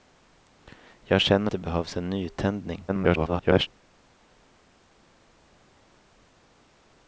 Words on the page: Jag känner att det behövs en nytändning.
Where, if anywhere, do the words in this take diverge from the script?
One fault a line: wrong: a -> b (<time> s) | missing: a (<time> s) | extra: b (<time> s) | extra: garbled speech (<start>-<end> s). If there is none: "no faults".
missing: att (1.5 s)
extra: garbled speech (2.9-3.7 s)